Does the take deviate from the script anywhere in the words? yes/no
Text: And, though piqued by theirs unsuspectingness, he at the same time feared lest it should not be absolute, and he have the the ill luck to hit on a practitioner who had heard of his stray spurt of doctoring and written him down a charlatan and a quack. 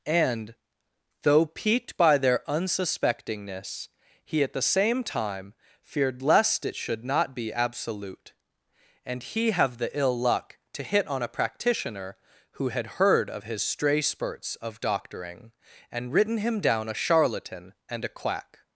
yes